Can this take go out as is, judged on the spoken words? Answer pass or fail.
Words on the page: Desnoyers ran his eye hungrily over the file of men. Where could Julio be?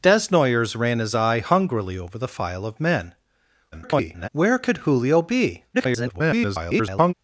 fail